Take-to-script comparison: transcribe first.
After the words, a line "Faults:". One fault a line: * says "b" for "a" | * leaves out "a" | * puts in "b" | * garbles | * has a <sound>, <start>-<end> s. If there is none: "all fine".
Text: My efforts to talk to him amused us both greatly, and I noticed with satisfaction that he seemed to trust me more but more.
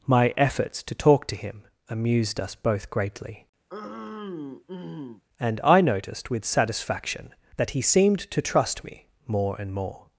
My efforts to talk to him amused us both greatly, and I noticed with satisfaction that he seemed to trust me more and more.
Faults:
* has a throat clearing, 3.7-5.2 s
* says "and" for "but"